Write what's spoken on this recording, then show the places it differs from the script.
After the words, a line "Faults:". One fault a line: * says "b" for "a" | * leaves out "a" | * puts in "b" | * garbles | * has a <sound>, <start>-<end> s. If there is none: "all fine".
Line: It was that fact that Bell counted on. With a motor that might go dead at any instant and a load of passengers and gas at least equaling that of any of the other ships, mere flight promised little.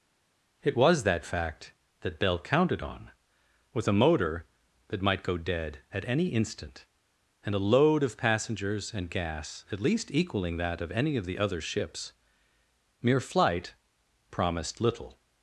It was that fact that Bell counted on. With a motor that might go dead at any instant and a load of passengers and gas at least equaling that of any of the other ships, mere flight promised little.
Faults:
all fine